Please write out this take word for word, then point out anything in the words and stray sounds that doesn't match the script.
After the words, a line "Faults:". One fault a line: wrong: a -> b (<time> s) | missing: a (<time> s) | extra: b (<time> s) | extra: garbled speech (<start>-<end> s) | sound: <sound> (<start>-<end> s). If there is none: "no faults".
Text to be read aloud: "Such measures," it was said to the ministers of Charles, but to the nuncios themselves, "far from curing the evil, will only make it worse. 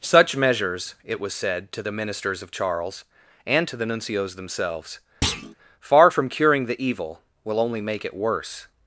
"Such measures," it was said to the ministers of Charles, and to the nuncios themselves, "far from curing the evil, will only make it worse.
Faults:
wrong: but -> and (3.5 s)
sound: thud (5.2-5.5 s)